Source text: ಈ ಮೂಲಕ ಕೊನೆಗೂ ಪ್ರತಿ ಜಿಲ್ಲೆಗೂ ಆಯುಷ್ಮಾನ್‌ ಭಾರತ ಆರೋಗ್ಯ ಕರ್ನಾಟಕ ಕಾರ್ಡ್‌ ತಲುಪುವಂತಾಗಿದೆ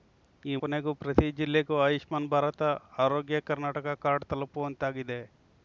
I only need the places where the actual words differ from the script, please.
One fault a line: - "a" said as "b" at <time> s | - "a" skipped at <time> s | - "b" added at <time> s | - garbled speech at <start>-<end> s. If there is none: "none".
- "ಮೂಲಕ" skipped at 0.6 s